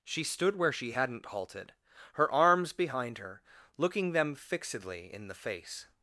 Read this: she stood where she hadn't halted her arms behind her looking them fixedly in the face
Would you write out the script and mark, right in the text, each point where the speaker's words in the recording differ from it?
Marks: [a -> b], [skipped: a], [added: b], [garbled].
she stood where she hadn't halted her arms behind her looking them fixedly in the face